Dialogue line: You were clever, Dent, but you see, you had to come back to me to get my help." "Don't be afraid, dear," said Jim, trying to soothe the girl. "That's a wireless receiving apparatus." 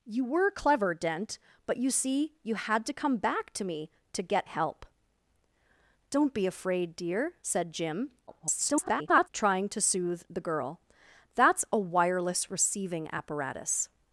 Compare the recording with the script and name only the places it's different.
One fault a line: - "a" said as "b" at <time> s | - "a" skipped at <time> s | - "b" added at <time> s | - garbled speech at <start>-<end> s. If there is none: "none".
- "my" skipped at 4.5 s
- garbled speech at 8.3-9.3 s